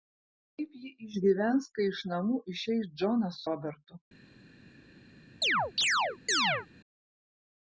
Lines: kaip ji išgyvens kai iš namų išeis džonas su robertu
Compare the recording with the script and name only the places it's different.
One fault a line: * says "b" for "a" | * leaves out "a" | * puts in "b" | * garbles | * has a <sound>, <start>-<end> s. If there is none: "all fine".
* leaves out "su"
* has a chirp, 5.4-6.7 s